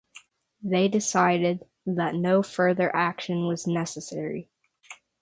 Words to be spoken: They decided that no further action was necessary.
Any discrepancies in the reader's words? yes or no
no